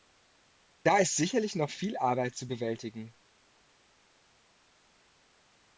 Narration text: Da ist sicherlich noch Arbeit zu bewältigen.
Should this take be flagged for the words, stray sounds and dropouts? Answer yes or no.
yes